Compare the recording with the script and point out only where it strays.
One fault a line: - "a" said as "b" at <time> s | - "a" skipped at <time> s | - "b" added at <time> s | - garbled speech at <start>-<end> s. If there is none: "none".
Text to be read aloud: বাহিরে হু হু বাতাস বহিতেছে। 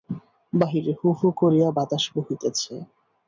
- "করিয়া" added at 1.4 s